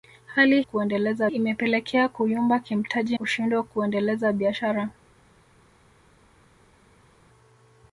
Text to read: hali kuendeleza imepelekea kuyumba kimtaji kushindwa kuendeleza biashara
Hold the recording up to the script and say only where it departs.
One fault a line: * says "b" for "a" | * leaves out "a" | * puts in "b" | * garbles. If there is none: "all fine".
all fine